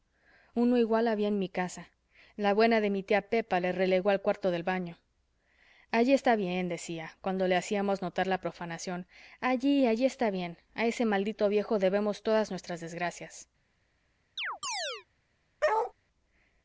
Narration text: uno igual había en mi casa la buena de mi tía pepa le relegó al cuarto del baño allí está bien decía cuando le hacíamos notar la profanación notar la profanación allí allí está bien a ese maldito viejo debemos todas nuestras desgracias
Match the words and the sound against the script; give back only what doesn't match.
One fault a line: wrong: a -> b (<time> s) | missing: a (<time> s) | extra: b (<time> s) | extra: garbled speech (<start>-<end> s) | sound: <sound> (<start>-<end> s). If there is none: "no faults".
missing: notar la profanación (9.1 s)
sound: chirp (14.4-15.1 s)
sound: bark (15.6-15.9 s)